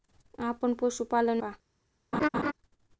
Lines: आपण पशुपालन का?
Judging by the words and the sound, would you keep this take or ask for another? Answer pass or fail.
fail